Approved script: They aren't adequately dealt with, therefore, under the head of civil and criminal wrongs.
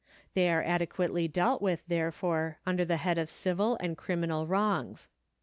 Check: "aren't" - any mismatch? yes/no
yes